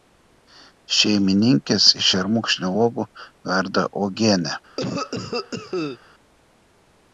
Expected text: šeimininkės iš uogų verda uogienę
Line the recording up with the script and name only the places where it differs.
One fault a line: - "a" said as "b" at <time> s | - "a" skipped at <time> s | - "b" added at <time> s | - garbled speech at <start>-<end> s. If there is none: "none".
- "šermukšnio" added at 2.1 s